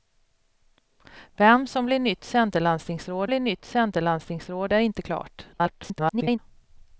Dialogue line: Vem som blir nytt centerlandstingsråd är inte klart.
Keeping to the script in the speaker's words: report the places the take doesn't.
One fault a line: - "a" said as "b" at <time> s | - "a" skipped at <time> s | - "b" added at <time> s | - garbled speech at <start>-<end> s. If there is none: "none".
- "blir nytt centerlandstingsråd" added at 3.3 s
- garbled speech at 5.5-6.4 s